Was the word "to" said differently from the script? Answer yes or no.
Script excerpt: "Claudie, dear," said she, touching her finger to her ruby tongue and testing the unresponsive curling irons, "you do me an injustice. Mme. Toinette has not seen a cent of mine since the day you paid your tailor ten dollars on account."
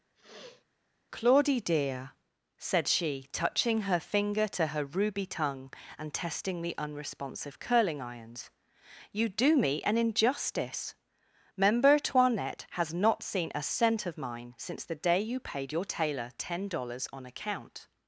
no